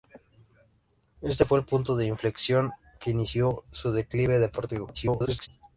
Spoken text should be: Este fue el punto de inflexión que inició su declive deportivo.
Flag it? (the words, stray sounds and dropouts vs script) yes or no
yes